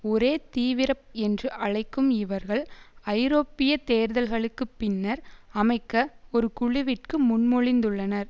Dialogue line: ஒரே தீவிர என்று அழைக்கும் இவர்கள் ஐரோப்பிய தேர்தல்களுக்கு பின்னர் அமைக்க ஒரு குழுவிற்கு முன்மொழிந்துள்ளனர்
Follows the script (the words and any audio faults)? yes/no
yes